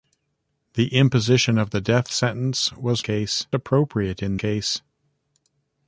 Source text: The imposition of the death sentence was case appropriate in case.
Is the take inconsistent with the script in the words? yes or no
no